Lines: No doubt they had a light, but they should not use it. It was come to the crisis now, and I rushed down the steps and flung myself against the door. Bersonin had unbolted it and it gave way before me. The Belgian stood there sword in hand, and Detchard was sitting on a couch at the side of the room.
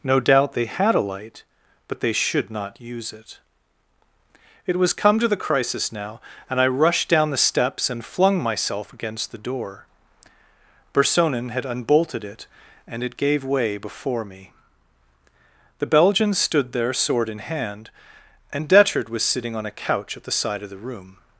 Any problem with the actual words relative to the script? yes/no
no